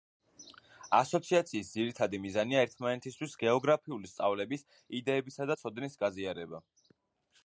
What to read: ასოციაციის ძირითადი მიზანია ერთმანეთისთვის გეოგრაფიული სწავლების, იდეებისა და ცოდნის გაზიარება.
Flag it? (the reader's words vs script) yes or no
no